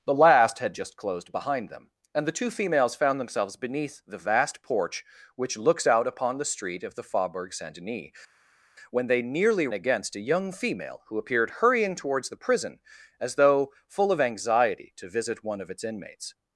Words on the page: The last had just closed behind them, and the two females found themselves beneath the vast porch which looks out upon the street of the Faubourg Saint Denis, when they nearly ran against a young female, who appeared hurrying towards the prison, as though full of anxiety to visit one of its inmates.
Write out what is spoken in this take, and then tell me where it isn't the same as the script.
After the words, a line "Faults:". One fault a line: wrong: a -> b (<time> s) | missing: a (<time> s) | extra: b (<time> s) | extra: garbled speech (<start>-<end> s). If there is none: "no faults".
The last had just closed behind them, and the two females found themselves beneath the vast porch which looks out upon the street of the Faubourg Saint Denis, when they nearly against a young female, who appeared hurrying towards the prison, as though full of anxiety to visit one of its inmates.
Faults:
missing: ran (9.7 s)